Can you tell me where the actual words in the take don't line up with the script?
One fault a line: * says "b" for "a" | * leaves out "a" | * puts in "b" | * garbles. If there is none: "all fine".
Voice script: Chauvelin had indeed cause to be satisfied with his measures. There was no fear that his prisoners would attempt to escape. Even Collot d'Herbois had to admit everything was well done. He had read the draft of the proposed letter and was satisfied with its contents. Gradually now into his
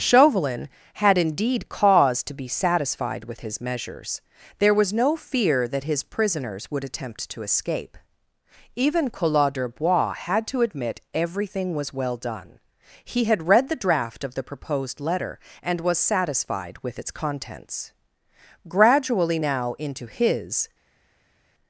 all fine